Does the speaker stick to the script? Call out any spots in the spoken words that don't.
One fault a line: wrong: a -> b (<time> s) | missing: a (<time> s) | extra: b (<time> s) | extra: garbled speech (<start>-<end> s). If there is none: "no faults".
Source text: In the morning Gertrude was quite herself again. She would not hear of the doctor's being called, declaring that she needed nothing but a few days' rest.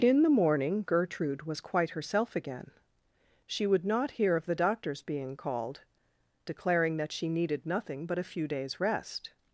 no faults